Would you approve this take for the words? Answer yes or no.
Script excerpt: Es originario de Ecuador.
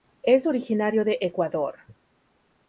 yes